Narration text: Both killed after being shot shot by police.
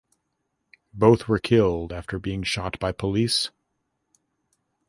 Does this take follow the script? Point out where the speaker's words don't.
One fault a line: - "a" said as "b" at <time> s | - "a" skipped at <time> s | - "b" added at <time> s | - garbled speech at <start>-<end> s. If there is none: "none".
- "were" added at 1.3 s
- "shot" skipped at 2.8 s